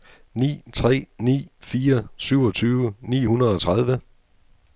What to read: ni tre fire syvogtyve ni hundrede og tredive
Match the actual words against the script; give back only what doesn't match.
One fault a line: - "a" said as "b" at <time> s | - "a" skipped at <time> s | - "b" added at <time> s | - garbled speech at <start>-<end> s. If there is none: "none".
- "ni" added at 1.2 s